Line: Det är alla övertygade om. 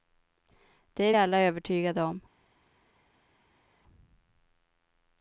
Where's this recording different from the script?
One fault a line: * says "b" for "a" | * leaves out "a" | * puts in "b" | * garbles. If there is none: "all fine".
all fine